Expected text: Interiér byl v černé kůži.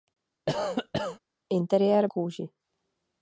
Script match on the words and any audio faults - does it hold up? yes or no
no